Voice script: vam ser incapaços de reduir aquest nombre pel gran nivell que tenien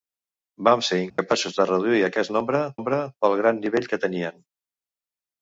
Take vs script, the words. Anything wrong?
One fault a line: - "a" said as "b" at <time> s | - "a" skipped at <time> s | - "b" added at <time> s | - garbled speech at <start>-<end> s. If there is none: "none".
- "nombre" added at 2.8 s